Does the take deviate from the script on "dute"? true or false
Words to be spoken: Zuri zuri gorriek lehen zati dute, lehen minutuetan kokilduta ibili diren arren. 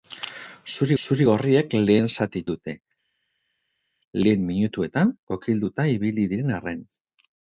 false